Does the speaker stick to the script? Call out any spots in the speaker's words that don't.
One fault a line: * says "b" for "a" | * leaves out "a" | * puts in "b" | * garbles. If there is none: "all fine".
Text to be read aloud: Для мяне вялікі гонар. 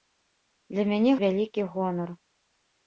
all fine